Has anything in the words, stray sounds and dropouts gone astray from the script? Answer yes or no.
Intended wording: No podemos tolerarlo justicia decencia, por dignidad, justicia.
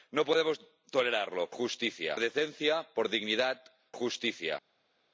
no